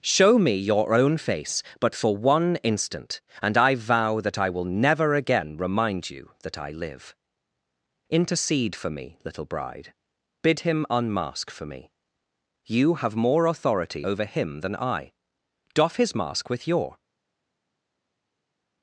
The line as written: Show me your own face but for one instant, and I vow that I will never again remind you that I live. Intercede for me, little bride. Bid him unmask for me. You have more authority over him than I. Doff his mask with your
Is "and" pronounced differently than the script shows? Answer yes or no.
no